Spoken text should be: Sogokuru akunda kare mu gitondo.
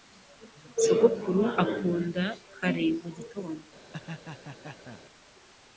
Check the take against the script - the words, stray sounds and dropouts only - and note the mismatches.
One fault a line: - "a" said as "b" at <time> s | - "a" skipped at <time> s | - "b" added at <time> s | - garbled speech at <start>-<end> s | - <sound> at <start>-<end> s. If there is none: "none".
- laugh at 3.9-5.0 s